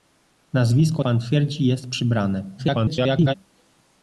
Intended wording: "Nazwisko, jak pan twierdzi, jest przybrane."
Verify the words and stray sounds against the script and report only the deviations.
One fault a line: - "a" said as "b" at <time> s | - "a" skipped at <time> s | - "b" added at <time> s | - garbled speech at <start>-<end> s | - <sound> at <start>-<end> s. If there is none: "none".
- "jak" skipped at 1.0 s
- garbled speech at 2.6-3.3 s